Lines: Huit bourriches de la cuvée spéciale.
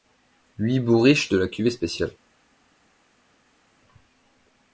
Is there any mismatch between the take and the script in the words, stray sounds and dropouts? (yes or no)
no